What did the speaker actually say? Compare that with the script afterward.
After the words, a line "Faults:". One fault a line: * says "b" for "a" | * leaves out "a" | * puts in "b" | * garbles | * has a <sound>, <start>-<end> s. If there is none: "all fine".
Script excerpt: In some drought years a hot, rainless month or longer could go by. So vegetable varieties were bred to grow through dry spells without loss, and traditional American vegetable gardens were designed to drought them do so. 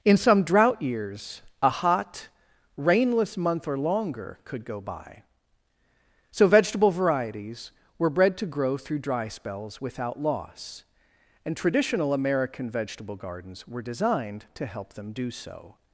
In some drought years a hot, rainless month or longer could go by. So vegetable varieties were bred to grow through dry spells without loss, and traditional American vegetable gardens were designed to help them do so.
Faults:
* says "help" for "drought"